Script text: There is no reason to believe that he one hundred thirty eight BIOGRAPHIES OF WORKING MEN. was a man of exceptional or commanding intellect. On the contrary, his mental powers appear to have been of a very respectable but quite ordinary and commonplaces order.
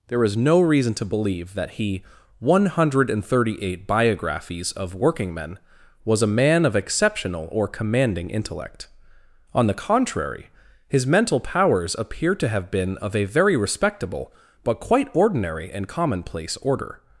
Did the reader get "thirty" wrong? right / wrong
right